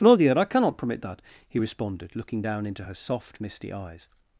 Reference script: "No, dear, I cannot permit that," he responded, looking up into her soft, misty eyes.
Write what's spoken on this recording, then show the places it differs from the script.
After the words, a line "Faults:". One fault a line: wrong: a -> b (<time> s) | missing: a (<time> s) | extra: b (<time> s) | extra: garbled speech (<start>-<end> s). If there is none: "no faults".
"No, dear, I cannot permit that," he responded, looking down into her soft, misty eyes.
Faults:
wrong: up -> down (2.4 s)